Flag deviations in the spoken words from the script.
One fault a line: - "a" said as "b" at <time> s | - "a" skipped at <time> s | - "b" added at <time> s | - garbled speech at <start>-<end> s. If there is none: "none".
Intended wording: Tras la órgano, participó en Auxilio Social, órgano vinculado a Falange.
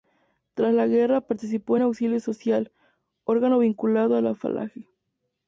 - "órgano" said as "guerra" at 0.9 s
- "la" added at 4.2 s